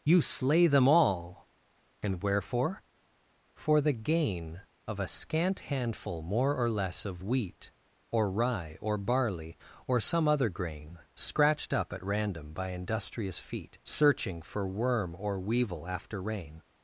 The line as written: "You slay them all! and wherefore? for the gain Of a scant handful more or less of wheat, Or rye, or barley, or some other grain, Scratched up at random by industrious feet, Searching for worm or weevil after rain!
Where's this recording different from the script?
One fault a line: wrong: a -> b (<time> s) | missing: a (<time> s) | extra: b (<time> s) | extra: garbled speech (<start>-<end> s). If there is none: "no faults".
no faults